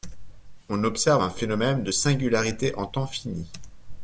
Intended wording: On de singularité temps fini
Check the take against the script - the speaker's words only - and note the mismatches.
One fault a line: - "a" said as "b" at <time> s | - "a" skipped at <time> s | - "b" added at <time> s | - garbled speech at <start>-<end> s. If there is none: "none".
- "observe un phénomène" added at 0.8 s
- "en" added at 2.7 s